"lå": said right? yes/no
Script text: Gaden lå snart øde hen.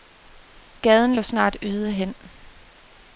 yes